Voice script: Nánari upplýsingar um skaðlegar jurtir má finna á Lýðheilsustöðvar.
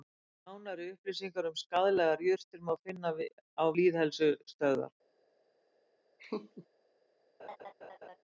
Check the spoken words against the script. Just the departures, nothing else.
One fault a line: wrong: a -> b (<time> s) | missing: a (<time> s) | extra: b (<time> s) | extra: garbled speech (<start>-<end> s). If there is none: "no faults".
no faults